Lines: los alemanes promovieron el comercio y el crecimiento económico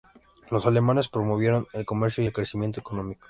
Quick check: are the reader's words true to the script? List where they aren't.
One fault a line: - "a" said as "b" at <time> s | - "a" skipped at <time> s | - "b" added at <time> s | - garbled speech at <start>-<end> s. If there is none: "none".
none